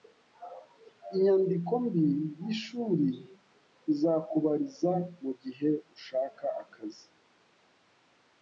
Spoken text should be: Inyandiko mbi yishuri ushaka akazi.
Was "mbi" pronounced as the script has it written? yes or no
yes